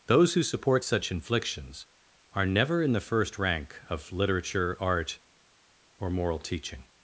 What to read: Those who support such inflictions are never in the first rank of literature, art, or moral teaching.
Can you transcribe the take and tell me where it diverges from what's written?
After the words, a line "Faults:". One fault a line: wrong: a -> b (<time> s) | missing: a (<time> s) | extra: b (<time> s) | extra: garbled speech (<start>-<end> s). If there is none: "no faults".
Those who support such inflictions are never in the first rank of literature, art, or moral teaching.
Faults:
no faults